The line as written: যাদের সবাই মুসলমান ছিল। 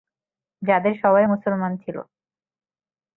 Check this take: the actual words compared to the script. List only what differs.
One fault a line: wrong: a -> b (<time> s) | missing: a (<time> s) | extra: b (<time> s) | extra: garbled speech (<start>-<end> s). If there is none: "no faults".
no faults